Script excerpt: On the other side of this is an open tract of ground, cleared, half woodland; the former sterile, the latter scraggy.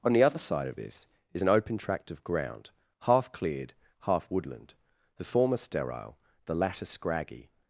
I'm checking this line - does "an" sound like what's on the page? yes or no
yes